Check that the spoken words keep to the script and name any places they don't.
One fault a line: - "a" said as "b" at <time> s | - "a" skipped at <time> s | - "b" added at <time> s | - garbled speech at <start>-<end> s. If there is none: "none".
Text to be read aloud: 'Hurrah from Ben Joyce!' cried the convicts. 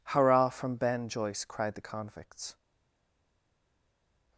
none